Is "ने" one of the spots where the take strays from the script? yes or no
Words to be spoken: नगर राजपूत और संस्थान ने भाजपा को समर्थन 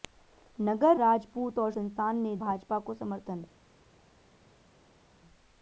no